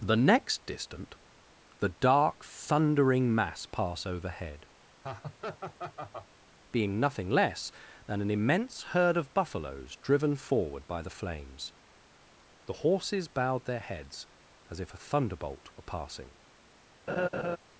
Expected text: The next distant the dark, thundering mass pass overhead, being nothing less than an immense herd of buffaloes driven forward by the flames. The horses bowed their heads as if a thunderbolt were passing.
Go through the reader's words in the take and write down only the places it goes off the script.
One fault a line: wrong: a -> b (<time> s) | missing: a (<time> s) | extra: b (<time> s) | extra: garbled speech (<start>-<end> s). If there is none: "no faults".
no faults